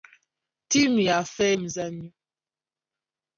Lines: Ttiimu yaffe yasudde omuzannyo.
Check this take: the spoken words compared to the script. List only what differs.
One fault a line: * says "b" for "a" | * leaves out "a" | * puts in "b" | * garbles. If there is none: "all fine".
* leaves out "yasudde"